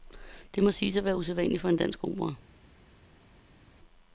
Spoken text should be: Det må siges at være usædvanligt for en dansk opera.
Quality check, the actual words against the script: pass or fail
pass